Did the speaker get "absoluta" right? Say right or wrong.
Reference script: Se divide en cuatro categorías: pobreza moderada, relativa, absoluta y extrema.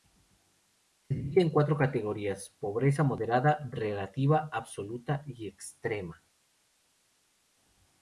right